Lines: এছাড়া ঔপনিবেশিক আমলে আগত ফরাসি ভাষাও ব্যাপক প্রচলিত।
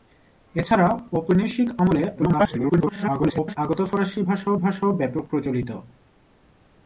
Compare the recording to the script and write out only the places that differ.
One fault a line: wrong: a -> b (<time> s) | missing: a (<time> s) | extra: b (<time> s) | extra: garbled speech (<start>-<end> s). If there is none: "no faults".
extra: garbled speech (2.2-3.6 s)
extra: ভাষাও (4.6 s)